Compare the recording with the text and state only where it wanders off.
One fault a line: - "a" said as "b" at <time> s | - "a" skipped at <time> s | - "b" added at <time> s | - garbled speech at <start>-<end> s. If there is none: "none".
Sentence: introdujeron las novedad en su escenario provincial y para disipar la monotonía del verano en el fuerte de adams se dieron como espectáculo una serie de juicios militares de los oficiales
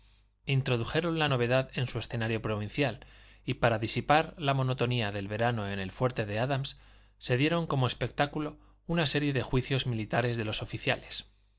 - "las" said as "la" at 1.2 s